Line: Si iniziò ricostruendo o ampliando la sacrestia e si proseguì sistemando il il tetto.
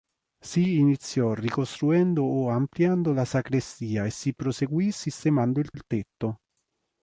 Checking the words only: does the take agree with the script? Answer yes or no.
yes